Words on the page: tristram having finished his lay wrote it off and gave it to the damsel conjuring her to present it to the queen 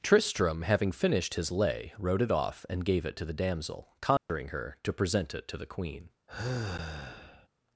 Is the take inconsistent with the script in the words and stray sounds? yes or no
yes